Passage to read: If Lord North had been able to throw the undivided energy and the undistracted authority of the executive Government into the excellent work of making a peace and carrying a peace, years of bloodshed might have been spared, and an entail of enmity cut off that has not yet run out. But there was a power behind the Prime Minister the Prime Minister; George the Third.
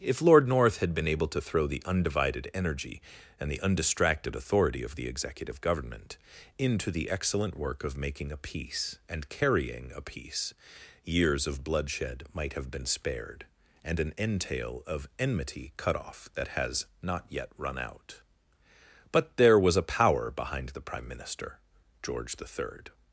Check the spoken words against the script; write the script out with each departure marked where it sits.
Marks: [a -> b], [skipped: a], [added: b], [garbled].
If Lord North had been able to throw the undivided energy and the undistracted authority of the executive Government into the excellent work of making a peace and carrying a peace, years of bloodshed might have been spared, and an entail of enmity cut off that has not yet run out. But there was a power behind the Prime Minister [skipped: the Prime Minister;] George the Third.